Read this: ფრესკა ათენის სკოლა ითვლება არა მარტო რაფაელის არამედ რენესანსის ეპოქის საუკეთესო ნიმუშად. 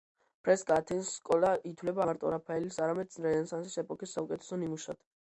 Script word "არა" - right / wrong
wrong